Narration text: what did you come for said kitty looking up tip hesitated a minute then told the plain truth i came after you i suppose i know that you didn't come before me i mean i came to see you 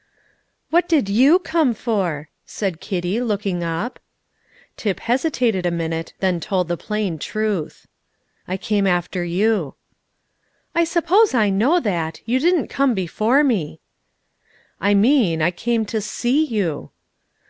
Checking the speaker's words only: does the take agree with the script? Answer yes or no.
yes